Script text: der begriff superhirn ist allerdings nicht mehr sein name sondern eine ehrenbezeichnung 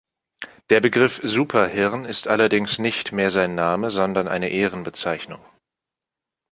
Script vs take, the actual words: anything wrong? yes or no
no